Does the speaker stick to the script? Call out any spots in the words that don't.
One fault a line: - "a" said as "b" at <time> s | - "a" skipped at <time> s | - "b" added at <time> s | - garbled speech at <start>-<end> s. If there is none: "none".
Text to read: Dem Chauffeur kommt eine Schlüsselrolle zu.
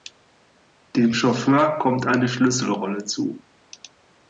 none